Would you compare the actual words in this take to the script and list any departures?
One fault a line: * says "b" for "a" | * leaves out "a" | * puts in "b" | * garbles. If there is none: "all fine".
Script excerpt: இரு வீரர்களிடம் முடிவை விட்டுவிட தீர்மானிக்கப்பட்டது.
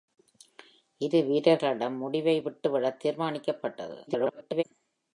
* garbles